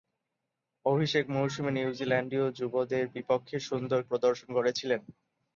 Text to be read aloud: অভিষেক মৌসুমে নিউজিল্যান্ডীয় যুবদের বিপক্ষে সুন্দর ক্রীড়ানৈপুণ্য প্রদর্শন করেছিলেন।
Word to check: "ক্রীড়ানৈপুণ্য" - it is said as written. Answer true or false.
false